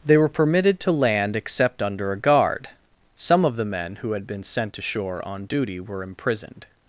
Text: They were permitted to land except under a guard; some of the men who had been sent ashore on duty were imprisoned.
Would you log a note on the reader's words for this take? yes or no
no